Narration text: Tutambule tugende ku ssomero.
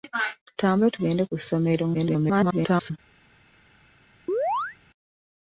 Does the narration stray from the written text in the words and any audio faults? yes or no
yes